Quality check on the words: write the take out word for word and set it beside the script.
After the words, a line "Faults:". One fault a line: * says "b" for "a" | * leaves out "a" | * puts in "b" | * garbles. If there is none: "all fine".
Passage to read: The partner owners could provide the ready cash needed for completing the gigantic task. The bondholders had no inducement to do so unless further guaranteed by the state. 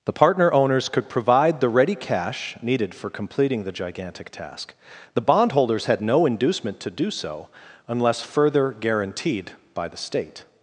The partner owners could provide the ready cash needed for completing the gigantic task. The bondholders had no inducement to do so unless further guaranteed by the state.
Faults:
all fine